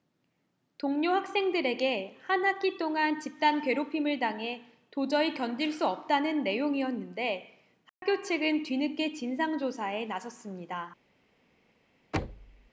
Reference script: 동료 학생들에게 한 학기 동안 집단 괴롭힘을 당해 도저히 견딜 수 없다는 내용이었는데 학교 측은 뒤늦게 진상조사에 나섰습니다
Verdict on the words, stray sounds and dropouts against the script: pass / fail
fail